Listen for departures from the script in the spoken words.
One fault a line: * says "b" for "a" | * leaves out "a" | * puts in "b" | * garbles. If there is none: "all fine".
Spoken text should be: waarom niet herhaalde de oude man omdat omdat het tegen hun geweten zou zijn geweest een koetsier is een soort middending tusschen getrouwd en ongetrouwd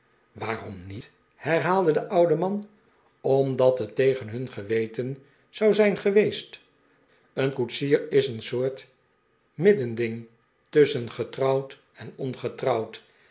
* leaves out "omdat"